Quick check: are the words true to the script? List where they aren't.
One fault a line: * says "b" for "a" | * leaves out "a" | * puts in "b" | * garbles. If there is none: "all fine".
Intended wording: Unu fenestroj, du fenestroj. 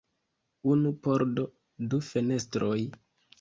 * says "pordo" for "fenestroj"